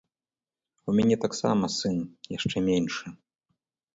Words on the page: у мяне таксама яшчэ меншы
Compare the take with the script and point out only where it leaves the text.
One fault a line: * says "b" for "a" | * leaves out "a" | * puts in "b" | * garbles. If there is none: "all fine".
* puts in "сын"